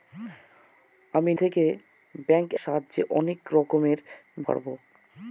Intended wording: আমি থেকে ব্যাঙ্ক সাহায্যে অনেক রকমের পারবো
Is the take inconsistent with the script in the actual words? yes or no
no